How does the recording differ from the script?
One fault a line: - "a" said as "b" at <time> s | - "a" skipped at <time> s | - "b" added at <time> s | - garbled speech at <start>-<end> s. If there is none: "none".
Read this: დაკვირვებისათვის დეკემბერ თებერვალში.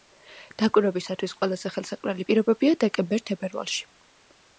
- "ყველაზე ხელსაყრელი პირობებია" added at 1.4 s